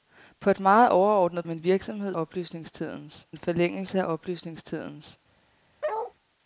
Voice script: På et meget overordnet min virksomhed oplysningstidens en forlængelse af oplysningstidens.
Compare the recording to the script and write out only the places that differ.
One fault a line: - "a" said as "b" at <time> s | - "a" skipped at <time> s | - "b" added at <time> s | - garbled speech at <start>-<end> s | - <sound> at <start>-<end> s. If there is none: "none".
- bark at 5.8-6.1 s